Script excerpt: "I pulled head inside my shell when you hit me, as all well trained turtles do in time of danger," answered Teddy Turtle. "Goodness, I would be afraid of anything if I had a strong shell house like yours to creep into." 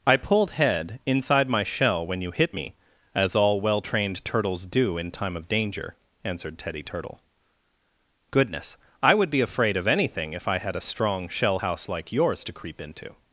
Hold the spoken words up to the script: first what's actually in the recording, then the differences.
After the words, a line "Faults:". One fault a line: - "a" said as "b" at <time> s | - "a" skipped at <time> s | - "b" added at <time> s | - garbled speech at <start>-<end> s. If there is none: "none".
"I pulled head inside my shell when you hit me, as all well trained turtles do in time of danger," answered Teddy Turtle. "Goodness, I would be afraid of anything if I had a strong shell house like yours to creep into."
Faults:
none